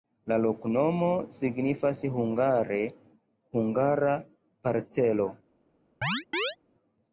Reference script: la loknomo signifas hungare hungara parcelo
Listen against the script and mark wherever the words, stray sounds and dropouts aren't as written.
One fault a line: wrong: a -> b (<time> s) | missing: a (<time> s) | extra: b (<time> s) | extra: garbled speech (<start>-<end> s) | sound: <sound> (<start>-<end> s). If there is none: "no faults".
sound: chirp (6.0-6.6 s)